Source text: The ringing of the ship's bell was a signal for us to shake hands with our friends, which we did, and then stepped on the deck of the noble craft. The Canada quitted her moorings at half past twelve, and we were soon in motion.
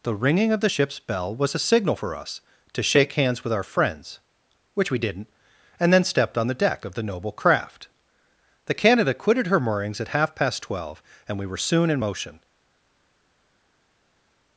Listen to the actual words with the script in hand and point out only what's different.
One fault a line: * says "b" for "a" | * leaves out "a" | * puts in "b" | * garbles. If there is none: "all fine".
* says "didn't" for "did"